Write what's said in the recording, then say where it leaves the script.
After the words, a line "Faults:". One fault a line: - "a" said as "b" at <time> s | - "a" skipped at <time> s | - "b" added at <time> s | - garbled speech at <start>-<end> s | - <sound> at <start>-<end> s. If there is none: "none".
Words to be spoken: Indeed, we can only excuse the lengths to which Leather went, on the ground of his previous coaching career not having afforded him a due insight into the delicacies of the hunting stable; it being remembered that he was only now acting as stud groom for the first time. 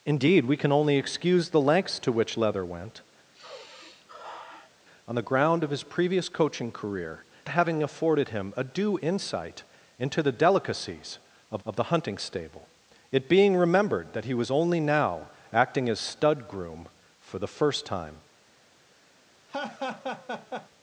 Indeed, we can only excuse the lengths to which Leather went, on the ground of his previous coaching career having afforded him a due insight into the delicacies of of the hunting stable; it being remembered that he was only now acting as stud groom for the first time.
Faults:
- sigh at 3.3-4.7 s
- "not" skipped at 7.2 s
- "of" added at 11.6 s
- laugh at 19.5-20.7 s